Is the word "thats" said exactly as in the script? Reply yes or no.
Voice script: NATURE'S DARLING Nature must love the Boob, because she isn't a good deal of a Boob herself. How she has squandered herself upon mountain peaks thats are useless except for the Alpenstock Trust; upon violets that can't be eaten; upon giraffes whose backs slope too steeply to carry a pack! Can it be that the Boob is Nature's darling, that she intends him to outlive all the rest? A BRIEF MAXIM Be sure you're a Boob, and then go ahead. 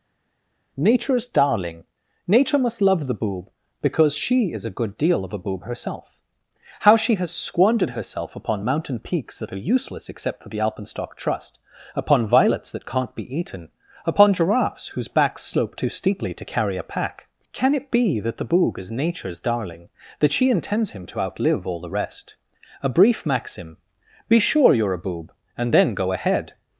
no